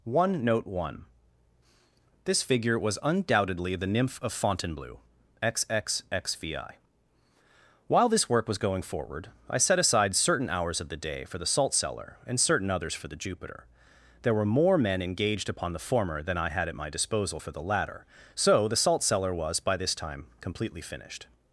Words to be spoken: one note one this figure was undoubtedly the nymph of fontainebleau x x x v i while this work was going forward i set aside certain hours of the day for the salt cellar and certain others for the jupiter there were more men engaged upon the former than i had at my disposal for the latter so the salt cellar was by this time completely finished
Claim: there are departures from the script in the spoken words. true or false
false